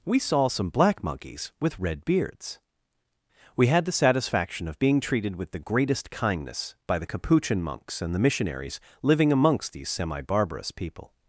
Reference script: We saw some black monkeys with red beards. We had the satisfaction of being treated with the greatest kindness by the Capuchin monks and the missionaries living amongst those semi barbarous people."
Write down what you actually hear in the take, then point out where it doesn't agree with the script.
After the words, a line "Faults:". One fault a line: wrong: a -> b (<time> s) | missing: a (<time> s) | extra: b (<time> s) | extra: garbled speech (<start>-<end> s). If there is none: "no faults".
We saw some black monkeys with red beards. We had the satisfaction of being treated with the greatest kindness by the Capuchin monks and the missionaries living amongst these semi barbarous people."
Faults:
wrong: those -> these (9.7 s)